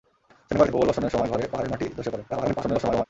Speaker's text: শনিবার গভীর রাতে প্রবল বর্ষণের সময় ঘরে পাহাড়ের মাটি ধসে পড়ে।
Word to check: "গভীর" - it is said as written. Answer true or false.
false